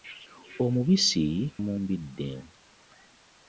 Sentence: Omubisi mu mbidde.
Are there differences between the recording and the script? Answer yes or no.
no